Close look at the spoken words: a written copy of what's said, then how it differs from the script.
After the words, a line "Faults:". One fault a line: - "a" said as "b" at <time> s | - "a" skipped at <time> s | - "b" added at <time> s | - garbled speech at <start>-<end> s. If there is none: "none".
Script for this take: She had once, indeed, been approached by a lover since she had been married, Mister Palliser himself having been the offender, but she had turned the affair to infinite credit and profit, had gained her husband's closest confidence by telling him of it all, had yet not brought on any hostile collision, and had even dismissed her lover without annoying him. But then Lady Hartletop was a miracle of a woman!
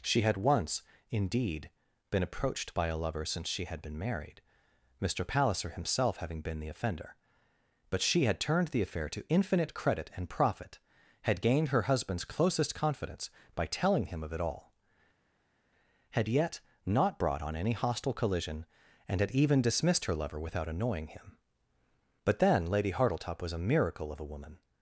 She had once, indeed, been approached by a lover since she had been married, Mister Palliser himself having been the offender, but she had turned the affair to infinite credit and profit, had gained her husband's closest confidence by telling him of it all, had yet not brought on any hostile collision, and had even dismissed her lover without annoying him. But then Lady Hartletop was a miracle of a woman!
Faults:
none